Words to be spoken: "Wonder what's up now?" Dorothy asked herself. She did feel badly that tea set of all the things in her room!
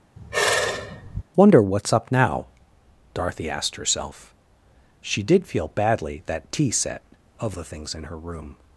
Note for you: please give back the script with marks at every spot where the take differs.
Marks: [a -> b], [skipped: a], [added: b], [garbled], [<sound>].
[sigh] "Wonder what's up now?" Dorothy asked herself. She did feel badly that tea set of [skipped: all] the things in her room!